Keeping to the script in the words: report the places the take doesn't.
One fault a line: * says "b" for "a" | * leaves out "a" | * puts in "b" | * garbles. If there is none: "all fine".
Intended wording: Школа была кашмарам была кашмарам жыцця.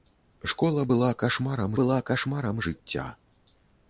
all fine